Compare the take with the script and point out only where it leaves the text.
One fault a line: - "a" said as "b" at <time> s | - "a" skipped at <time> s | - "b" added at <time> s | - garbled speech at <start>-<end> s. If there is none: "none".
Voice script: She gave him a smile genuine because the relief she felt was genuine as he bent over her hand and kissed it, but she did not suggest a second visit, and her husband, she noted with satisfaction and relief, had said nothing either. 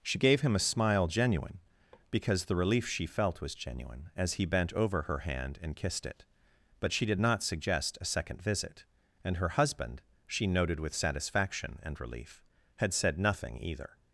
none